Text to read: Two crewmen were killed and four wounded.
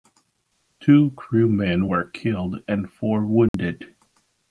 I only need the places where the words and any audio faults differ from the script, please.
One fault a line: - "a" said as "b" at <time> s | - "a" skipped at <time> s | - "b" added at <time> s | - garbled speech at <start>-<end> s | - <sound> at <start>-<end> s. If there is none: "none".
- dropout at 3.5-3.5 s